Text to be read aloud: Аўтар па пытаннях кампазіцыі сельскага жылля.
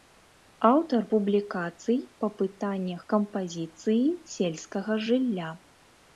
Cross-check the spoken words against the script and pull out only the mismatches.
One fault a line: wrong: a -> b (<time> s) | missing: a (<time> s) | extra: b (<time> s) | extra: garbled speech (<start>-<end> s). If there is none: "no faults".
extra: публікацый (1.1 s)